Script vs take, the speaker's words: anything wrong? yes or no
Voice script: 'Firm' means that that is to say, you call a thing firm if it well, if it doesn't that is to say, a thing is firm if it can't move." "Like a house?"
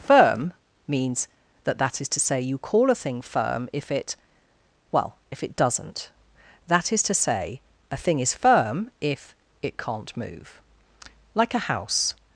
no